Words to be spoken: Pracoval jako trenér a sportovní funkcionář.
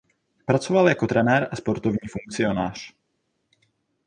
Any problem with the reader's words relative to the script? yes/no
no